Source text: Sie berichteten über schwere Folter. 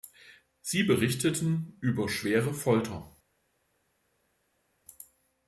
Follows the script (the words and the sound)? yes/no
yes